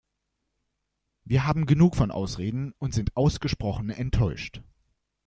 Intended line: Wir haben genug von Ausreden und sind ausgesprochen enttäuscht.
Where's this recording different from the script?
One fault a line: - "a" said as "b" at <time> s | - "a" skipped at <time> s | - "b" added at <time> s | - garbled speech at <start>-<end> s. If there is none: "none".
none